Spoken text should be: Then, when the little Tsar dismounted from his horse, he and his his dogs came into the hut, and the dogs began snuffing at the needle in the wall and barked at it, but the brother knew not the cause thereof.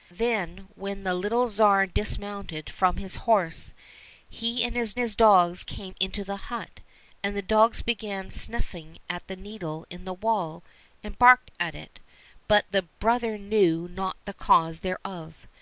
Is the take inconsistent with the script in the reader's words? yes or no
no